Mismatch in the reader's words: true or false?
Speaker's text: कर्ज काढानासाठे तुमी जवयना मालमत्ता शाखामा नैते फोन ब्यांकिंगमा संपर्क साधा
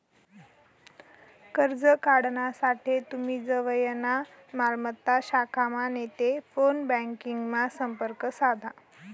false